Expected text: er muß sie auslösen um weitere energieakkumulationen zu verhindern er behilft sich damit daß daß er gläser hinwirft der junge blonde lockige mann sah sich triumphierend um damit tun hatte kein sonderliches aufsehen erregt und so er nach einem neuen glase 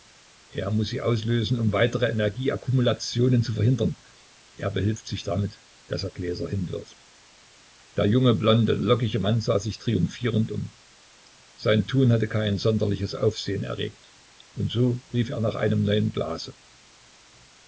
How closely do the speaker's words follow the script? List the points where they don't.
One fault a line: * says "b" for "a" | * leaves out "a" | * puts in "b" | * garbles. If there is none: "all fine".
* leaves out "daß"
* says "sein" for "damit"
* puts in "rief"